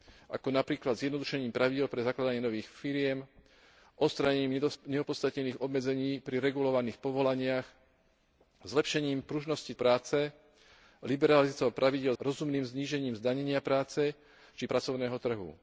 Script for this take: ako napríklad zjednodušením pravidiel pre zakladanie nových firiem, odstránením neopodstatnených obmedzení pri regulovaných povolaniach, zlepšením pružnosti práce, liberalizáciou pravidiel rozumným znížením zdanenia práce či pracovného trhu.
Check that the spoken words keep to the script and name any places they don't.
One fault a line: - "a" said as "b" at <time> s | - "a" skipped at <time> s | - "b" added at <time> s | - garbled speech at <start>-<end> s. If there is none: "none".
none